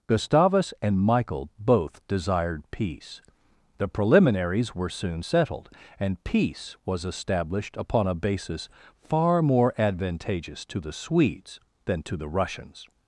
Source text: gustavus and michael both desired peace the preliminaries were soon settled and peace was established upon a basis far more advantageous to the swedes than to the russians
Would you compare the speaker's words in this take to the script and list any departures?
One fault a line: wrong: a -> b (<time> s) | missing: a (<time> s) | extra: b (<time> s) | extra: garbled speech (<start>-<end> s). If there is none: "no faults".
no faults